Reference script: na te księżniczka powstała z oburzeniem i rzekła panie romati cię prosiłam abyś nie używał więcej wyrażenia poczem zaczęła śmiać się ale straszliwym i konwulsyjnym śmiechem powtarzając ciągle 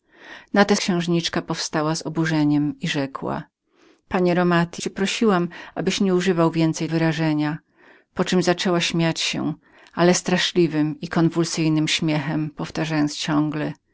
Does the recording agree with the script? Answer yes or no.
yes